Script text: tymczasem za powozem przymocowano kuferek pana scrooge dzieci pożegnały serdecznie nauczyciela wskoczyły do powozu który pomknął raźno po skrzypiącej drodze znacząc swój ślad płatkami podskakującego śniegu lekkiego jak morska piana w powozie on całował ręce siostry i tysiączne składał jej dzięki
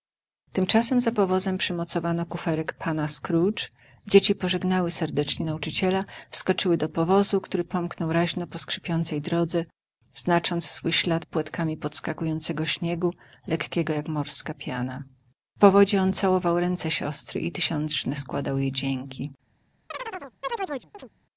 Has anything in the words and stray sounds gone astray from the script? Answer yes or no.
yes